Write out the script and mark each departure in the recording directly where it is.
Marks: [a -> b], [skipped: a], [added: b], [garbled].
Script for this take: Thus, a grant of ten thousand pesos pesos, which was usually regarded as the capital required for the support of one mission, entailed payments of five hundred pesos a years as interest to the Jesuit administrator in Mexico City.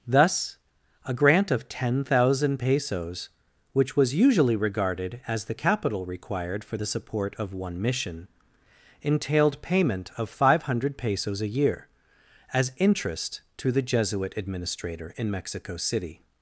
Thus, a grant of ten thousand pesos [skipped: pesos,] which was usually regarded as the capital required for the support of one mission, entailed [payments -> payment] of five hundred pesos a [years -> year] as interest to the Jesuit administrator in Mexico City.